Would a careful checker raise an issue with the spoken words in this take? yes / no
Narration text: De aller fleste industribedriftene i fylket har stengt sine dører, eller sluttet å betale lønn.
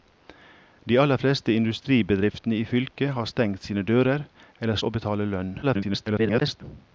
yes